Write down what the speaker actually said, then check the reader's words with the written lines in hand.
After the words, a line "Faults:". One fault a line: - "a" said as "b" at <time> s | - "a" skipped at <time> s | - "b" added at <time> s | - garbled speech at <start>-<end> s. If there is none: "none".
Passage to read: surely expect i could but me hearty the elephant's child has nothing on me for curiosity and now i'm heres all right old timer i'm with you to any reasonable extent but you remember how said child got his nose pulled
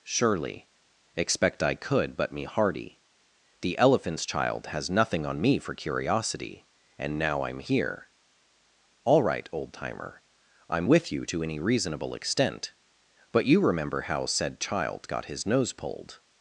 surely expect i could but me hearty the elephant's child has nothing on me for curiosity and now i'm here all right old timer i'm with you to any reasonable extent but you remember how said child got his nose pulled
Faults:
- "heres" said as "here" at 7.6 s